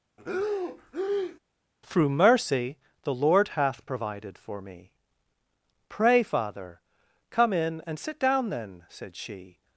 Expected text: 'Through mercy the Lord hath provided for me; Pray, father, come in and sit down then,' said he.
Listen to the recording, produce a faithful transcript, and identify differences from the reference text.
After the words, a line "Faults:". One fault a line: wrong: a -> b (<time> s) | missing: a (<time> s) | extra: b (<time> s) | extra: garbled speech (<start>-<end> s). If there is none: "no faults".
'Through mercy the Lord hath provided for me; Pray, father, come in and sit down then,' said she.
Faults:
wrong: he -> she (9.2 s)